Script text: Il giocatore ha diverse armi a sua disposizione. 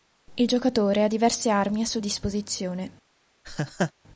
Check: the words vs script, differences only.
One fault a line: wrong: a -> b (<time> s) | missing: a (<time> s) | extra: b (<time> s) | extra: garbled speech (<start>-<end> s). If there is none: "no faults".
no faults